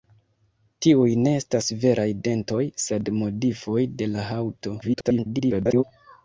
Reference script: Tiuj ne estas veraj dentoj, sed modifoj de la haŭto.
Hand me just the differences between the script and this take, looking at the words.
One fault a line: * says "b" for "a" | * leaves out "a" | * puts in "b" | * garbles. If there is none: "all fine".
* garbles